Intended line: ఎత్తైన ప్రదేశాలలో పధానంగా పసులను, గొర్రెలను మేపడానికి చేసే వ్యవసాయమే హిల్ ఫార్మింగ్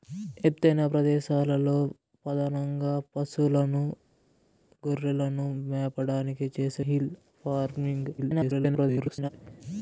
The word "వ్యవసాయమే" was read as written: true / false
false